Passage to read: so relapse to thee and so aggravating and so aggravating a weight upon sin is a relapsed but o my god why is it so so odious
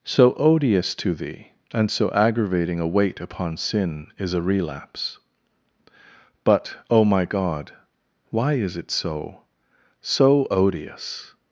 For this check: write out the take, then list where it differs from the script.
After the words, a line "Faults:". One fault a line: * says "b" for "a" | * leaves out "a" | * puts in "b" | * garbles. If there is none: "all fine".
so odious to thee and so aggravating a weight upon sin is a relapse but o my god why is it so so odious
Faults:
* says "odious" for "relapse"
* leaves out "and so aggravating"
* says "relapse" for "relapsed"